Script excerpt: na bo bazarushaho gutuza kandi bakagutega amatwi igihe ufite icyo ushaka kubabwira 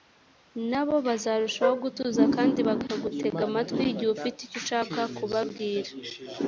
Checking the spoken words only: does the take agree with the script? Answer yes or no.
yes